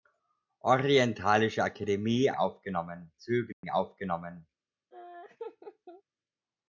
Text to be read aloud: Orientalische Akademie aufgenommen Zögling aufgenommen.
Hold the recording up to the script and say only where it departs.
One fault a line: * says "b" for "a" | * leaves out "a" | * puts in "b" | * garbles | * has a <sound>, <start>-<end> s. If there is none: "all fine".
* has a dropout, 3.5-3.6 s
* has a laugh, 4.9-6.0 s